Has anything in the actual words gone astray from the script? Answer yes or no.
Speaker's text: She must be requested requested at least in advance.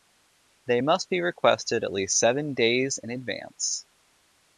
yes